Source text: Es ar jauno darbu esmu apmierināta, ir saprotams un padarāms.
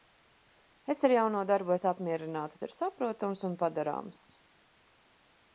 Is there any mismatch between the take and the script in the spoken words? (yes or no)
no